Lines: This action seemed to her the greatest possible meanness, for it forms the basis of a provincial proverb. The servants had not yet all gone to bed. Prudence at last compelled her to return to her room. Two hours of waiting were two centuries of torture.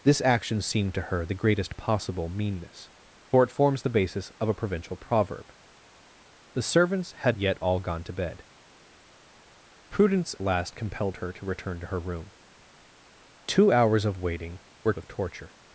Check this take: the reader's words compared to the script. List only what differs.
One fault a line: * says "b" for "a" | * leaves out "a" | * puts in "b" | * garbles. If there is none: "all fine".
* leaves out "not"
* leaves out "at"
* leaves out "two centuries"